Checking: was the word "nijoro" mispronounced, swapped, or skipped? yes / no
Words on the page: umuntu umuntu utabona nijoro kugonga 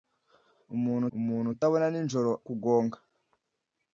no